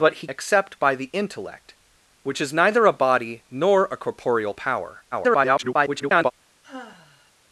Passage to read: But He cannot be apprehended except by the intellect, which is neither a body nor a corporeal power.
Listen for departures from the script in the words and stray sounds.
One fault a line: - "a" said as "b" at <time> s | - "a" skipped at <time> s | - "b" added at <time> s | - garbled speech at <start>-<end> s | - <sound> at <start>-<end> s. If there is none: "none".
- "cannot be apprehended" skipped at 0.3 s
- garbled speech at 5.1-6.3 s
- sigh at 6.6-7.3 s